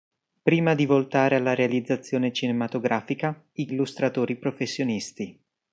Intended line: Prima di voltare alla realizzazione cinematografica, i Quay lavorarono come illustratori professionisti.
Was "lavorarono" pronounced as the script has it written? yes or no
no